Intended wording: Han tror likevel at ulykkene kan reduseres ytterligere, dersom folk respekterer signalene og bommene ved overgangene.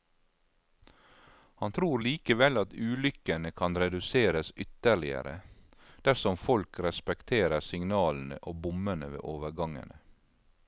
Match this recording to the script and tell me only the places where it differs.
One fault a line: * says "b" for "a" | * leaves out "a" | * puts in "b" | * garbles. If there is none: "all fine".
all fine